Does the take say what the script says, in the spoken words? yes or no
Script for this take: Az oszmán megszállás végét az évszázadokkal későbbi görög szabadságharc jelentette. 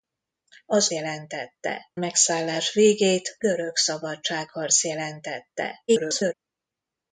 no